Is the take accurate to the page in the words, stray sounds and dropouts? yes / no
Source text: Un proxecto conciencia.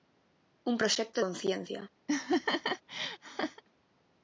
no